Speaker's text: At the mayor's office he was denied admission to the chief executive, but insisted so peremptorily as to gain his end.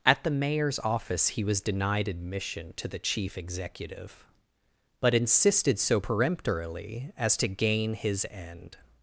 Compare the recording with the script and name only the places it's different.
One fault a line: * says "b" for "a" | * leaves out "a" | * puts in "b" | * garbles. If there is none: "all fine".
all fine